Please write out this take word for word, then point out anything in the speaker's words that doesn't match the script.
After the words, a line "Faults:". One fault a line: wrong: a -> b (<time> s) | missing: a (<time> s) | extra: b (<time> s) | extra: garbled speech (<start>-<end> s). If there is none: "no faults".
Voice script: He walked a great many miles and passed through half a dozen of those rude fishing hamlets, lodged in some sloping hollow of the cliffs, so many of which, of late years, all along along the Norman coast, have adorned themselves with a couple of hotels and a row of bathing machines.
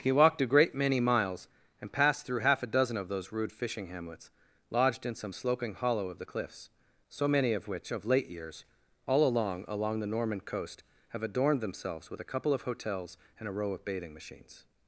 He walked a great many miles and passed through half a dozen of those rude fishing hamlets, lodged in some sloping hollow of the cliffs, so many of which, of late years, all along along the Norman coast, have adorned themselves with a couple of hotels and a row of bathing machines.
Faults:
no faults